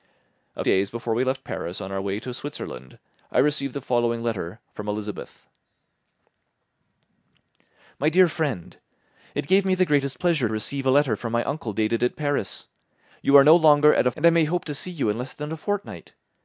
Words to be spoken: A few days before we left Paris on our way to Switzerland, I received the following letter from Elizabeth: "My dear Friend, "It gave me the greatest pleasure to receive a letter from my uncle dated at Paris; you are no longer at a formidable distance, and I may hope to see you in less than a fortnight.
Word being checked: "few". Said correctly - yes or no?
no